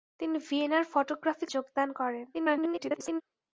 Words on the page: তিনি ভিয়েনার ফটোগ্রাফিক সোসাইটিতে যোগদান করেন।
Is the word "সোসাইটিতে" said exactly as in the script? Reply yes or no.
no